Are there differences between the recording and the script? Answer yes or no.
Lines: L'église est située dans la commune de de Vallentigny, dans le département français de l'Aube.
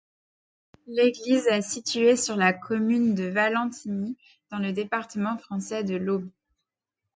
yes